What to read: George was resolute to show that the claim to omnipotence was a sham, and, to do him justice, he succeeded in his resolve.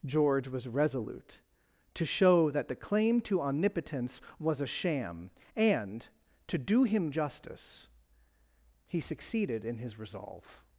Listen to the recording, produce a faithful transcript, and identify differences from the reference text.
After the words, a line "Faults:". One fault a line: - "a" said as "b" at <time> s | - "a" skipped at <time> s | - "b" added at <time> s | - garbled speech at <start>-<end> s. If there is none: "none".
George was resolute to show that the claim to omnipotence was a sham, and, to do him justice, he succeeded in his resolve.
Faults:
none